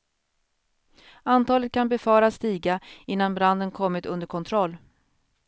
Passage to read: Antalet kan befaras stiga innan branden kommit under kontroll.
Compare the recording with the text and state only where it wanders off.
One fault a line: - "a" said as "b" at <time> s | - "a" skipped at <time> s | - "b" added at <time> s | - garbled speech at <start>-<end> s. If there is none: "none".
none